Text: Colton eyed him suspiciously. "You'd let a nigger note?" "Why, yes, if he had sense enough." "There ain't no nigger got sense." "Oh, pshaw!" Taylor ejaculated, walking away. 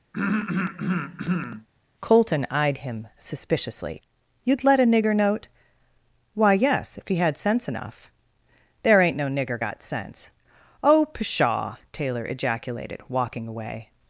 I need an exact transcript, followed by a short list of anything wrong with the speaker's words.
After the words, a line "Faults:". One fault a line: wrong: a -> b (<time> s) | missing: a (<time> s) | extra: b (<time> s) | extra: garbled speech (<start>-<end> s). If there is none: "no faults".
Colton eyed him suspiciously. "You'd let a nigger note?" "Why, yes, if he had sense enough." "There ain't no nigger got sense." "Oh, pshaw!" Taylor ejaculated, walking away.
Faults:
no faults